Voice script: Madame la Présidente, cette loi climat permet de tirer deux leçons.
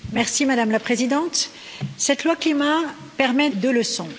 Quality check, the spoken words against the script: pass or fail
fail